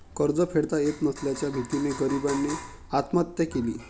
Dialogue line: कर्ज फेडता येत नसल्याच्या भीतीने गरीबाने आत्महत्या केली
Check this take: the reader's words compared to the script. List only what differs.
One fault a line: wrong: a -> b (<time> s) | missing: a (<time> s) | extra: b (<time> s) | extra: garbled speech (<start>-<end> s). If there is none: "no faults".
no faults